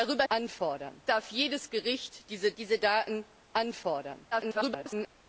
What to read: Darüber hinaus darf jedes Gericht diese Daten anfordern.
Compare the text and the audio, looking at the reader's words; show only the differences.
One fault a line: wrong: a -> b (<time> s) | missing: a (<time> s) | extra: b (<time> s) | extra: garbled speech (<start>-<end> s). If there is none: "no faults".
wrong: hinaus -> anfordern (0.3 s)
extra: diese (2.6 s)
extra: garbled speech (4.3-5.1 s)